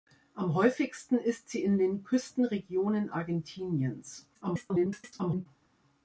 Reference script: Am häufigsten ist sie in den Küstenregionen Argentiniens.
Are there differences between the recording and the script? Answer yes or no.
yes